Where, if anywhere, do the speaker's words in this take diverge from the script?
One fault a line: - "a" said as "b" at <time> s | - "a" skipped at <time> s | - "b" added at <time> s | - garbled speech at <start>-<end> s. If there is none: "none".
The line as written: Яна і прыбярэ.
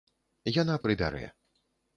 none